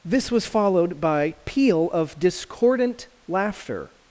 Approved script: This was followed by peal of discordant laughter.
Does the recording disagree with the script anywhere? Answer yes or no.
no